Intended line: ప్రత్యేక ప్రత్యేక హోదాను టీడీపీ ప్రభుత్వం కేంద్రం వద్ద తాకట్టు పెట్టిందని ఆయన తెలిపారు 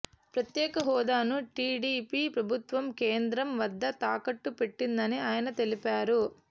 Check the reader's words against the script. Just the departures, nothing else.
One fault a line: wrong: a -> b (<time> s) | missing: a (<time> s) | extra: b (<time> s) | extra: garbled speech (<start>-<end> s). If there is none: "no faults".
missing: ప్రత్యేక (0.8 s)